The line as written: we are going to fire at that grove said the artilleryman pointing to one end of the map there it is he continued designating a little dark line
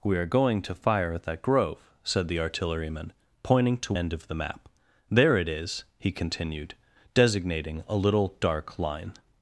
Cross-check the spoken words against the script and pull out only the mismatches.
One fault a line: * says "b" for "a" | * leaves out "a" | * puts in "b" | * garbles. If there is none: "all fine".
* leaves out "one"